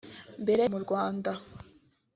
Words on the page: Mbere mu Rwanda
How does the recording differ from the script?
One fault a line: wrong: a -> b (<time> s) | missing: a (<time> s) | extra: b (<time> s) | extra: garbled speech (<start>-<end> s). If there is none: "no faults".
no faults